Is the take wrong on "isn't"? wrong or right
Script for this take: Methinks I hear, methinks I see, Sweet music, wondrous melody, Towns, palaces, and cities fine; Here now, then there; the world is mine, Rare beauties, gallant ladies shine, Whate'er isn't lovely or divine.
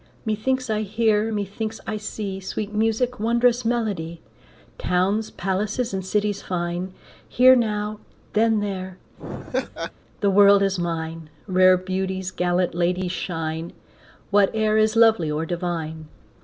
wrong